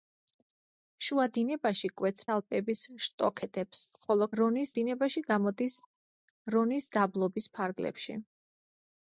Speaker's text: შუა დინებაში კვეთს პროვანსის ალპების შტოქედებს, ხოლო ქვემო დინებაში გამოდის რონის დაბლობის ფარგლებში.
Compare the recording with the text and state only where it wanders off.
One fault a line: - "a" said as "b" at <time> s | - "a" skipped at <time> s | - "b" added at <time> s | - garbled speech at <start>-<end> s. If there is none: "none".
- "პროვანსის" skipped at 2.2 s
- "ქვემო" said as "რონის" at 4.4 s